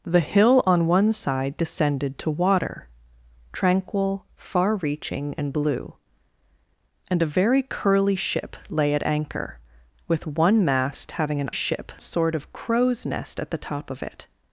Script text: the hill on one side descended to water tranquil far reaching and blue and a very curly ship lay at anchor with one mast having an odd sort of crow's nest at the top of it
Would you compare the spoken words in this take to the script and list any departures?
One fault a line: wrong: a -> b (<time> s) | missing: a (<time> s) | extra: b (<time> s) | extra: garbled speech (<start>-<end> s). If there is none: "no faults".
wrong: odd -> ship (11.5 s)